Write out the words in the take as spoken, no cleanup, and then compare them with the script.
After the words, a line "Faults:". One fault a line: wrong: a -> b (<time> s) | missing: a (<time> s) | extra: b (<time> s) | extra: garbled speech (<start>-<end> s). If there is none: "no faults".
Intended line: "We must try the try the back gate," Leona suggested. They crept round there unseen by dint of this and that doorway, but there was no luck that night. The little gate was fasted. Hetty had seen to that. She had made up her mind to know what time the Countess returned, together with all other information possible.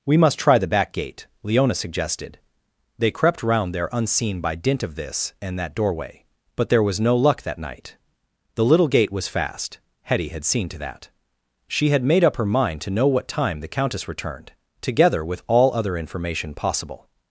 "We must try the back gate," Leona suggested. They crept round there unseen by dint of this and that doorway, but there was no luck that night. The little gate was fast. Hetty had seen to that. She had made up her mind to know what time the Countess returned, together with all other information possible.
Faults:
missing: try the (0.7 s)
wrong: fasted -> fast (9.3 s)